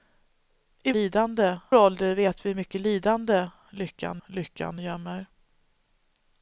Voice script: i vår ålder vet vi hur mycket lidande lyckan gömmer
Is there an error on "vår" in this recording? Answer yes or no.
yes